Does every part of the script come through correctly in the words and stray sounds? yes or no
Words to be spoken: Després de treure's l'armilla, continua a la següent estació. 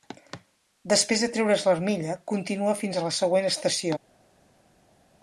no